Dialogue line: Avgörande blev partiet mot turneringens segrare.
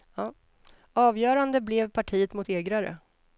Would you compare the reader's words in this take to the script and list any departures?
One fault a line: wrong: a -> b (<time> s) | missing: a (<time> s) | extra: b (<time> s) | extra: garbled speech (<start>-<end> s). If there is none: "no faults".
missing: turneringens (2.5 s)